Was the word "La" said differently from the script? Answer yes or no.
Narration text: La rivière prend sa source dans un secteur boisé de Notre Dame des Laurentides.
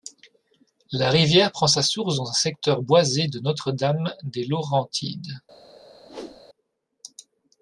no